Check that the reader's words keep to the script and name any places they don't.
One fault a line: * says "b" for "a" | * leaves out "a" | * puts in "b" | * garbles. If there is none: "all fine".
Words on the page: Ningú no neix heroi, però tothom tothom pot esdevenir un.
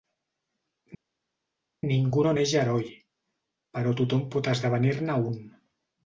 * leaves out "tothom"
* puts in "ne"